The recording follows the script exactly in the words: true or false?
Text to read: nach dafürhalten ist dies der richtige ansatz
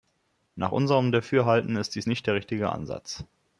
false